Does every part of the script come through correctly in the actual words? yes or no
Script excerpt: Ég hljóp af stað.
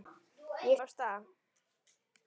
no